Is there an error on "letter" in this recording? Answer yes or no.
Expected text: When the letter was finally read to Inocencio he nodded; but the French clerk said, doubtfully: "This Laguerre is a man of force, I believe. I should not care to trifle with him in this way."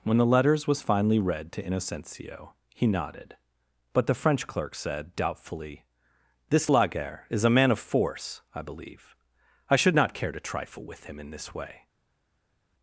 yes